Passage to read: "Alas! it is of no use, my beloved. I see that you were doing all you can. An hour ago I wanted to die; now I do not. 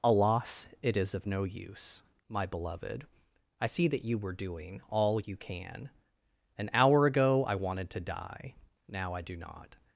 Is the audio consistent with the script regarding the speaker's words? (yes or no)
yes